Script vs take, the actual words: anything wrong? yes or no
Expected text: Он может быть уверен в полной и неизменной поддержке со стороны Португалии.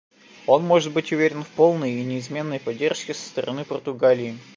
no